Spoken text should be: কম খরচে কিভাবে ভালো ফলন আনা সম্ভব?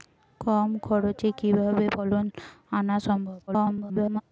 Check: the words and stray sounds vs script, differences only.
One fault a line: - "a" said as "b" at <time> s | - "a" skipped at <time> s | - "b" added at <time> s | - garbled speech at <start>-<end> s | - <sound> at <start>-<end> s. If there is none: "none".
- "ভালো" skipped at 1.9 s
- garbled speech at 3.5-4.2 s